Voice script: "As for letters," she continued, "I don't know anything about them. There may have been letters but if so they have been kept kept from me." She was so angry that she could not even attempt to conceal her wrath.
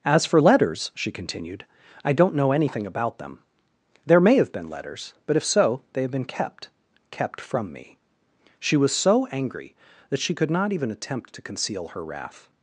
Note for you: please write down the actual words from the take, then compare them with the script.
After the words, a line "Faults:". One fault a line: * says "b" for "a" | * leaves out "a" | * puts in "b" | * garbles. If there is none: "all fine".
"As for letters," she continued, "I don't know anything about them. There may have been letters but if so they have been kept kept from me." She was so angry that she could not even attempt to conceal her wrath.
Faults:
all fine